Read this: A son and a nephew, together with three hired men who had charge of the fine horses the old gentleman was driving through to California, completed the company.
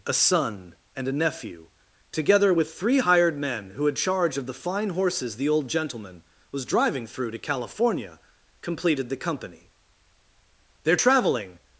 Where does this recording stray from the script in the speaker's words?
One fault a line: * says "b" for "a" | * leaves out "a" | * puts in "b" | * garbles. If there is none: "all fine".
* puts in "Their traveling"